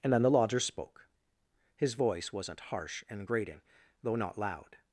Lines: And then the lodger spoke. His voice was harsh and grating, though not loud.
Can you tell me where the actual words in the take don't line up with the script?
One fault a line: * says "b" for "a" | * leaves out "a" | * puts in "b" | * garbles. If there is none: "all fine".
* says "wasn't" for "was"